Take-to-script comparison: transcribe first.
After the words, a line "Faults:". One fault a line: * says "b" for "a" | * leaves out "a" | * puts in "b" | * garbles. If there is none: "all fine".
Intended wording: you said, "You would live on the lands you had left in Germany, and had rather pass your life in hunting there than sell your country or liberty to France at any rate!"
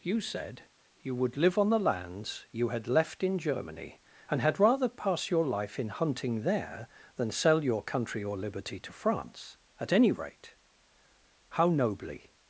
you said, "You would live on the lands you had left in Germany, and had rather pass your life in hunting there than sell your country or liberty to France at any rate!" How nobly
Faults:
* puts in "How nobly"